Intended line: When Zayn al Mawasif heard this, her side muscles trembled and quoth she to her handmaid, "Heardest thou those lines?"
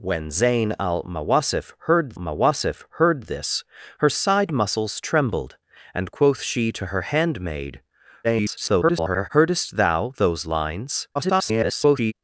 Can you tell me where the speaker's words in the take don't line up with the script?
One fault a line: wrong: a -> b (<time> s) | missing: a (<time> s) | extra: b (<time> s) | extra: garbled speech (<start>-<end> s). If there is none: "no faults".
extra: Mawasif heard (2.1 s)
extra: garbled speech (8.2-9.3 s)
extra: garbled speech (11.1-12.1 s)